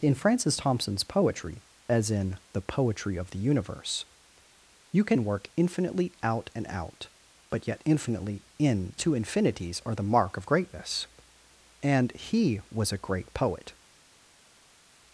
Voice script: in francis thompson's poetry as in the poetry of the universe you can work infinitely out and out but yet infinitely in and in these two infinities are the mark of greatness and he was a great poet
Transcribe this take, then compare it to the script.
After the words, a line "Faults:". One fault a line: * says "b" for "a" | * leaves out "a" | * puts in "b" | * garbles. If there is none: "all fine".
in francis thompson's poetry as in the poetry of the universe you can work infinitely out and out but yet infinitely in two infinities are the mark of greatness and he was a great poet
Faults:
* leaves out "and in these"